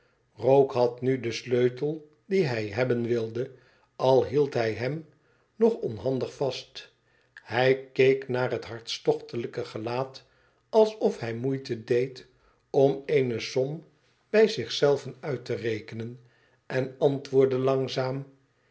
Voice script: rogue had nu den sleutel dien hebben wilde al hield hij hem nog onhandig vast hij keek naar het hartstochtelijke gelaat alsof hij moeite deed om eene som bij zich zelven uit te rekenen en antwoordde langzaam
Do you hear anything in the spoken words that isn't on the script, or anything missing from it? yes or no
yes